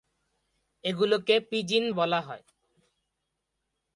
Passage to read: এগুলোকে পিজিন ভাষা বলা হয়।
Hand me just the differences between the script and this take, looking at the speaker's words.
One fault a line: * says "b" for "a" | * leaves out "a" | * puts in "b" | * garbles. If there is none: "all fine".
* leaves out "ভাষা"